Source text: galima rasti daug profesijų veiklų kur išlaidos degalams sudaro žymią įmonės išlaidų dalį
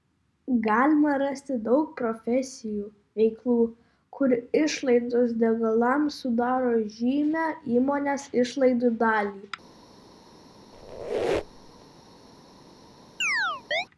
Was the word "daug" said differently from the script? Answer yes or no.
no